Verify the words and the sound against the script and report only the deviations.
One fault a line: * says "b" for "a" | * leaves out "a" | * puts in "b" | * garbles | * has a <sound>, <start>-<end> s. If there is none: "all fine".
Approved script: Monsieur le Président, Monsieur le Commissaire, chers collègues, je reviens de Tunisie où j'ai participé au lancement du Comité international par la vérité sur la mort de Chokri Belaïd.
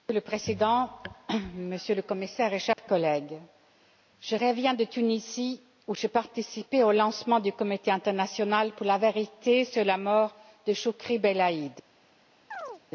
* has a dropout, 2.7-2.8 s
* says "pour" for "par"
* has a chirp, 12.5-12.8 s